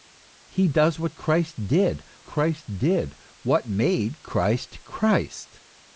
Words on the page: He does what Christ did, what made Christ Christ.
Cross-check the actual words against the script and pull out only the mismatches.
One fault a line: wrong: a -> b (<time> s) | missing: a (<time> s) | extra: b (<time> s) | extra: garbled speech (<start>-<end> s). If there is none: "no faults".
extra: Christ did (2.2 s)